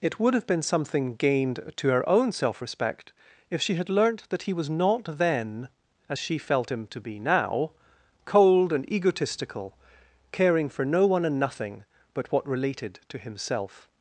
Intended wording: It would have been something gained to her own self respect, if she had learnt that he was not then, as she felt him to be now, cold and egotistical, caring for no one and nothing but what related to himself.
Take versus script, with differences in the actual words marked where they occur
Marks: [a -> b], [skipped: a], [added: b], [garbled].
It would have been something gained to her own self respect, if she had learnt that he was not then, as she felt him to be now, cold and egotistical, caring for no one and nothing but what related to himself.